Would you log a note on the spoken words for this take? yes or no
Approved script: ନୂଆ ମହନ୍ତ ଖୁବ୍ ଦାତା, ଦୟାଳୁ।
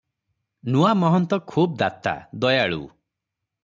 no